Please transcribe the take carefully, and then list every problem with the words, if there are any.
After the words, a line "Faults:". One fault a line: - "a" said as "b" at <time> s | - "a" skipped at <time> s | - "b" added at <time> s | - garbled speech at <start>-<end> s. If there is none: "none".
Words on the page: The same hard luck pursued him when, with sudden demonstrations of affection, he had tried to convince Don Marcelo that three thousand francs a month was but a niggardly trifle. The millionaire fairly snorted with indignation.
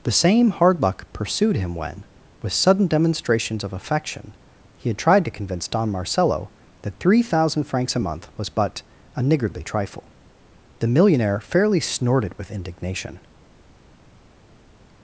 The same hard luck pursued him when, with sudden demonstrations of affection, he had tried to convince Don Marcelo that three thousand francs a month was but a niggardly trifle. The millionaire fairly snorted with indignation.
Faults:
none